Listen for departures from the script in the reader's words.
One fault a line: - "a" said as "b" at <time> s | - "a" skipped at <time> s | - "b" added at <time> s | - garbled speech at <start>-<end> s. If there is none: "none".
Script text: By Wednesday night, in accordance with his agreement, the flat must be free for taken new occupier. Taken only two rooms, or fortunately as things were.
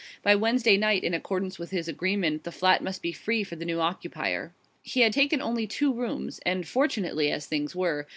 - "taken" said as "the" at 3.5 s
- "He had" added at 4.8 s
- "or" said as "and" at 6.5 s